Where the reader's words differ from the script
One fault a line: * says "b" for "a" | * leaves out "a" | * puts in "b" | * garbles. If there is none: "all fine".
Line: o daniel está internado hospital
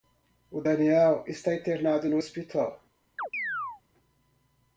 * puts in "no"